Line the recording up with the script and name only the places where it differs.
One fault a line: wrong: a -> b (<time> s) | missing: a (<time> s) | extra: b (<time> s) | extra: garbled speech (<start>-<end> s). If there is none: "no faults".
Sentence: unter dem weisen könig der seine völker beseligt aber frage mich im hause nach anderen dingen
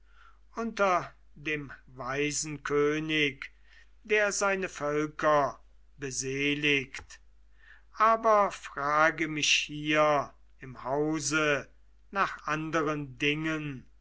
extra: hier (9.5 s)